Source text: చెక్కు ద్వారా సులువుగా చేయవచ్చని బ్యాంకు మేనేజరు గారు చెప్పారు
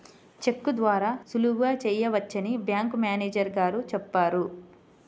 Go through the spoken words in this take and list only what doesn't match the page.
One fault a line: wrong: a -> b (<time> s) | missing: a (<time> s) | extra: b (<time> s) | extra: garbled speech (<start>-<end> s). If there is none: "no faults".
no faults